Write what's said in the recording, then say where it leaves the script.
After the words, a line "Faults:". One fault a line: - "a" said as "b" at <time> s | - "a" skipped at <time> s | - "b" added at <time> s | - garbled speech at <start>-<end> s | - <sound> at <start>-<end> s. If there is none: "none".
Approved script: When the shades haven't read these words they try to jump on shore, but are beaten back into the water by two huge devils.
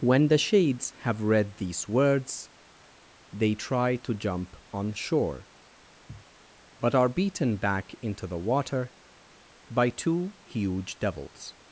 When the shades have read these words they try to jump on shore, but are beaten back into the water by two huge devils.
Faults:
- "haven't" said as "have" at 1.0 s
- sniff at 6.1-6.3 s